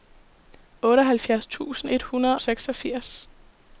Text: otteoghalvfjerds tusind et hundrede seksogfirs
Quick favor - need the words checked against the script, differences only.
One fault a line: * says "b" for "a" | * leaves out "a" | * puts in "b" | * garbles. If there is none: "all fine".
all fine